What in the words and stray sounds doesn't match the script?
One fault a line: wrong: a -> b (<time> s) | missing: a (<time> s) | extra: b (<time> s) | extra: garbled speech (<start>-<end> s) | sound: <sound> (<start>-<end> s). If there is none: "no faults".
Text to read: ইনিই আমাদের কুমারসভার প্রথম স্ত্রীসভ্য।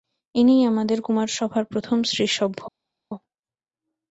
no faults